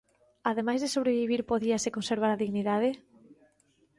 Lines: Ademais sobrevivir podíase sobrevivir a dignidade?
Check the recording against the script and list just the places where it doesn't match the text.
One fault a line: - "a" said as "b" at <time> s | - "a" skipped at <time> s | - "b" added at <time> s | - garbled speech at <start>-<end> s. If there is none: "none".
- "de" added at 0.8 s
- "sobrevivir" said as "conservar" at 2.0 s